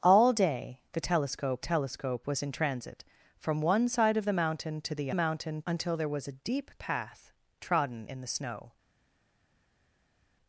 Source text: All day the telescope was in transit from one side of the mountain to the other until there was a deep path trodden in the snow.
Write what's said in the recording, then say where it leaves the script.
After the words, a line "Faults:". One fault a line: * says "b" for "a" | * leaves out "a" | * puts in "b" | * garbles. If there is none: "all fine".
All day the telescope telescope was in transit from one side of the mountain to the mountain until there was a deep path trodden in the snow.
Faults:
* puts in "telescope"
* says "mountain" for "other"